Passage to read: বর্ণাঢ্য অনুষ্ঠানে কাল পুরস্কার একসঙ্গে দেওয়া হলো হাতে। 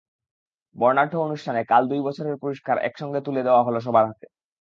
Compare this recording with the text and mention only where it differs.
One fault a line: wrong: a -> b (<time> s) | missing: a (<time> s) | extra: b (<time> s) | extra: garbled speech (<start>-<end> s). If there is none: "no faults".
extra: দুই বছরের (1.9 s)
extra: তুলে (3.2 s)
extra: সবার (3.8 s)